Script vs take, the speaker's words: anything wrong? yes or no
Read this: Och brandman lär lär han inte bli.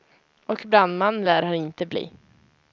yes